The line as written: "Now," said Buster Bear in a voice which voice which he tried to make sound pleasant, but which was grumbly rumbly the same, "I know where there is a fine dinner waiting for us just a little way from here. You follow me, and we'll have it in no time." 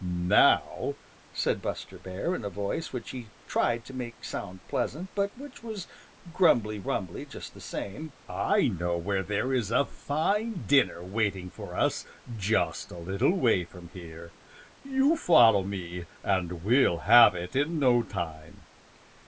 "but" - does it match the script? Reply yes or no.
yes